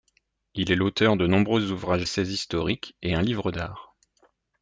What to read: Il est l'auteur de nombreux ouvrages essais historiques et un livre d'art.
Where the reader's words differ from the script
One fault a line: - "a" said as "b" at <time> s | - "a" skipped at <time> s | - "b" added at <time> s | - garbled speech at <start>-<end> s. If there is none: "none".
none